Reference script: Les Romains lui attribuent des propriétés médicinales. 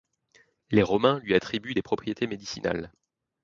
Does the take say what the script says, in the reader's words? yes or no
yes